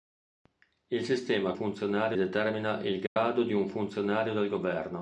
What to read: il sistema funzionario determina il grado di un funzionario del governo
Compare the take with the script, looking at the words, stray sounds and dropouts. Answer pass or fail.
fail